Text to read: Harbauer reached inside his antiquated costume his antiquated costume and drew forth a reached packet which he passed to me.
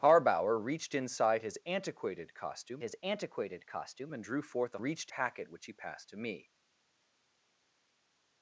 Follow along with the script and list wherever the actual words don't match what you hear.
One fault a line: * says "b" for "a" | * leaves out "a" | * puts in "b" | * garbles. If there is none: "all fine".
all fine